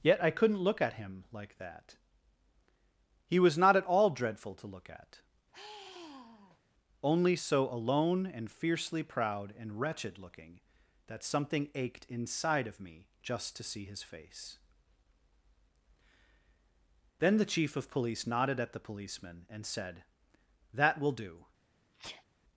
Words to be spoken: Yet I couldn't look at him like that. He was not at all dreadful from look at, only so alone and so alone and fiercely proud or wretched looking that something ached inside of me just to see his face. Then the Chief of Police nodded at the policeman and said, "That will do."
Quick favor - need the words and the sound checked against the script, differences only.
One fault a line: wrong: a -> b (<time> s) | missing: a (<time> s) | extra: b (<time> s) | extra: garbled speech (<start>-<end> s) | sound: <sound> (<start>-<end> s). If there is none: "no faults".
wrong: from -> to (4.5 s)
sound: sigh (5.5-6.6 s)
missing: so alone and (8.5 s)
wrong: or -> and (9.6 s)
sound: sneeze (21.9-22.2 s)